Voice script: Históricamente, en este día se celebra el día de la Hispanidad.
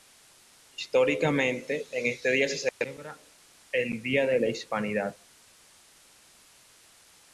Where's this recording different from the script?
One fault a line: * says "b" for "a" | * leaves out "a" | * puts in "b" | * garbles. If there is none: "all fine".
all fine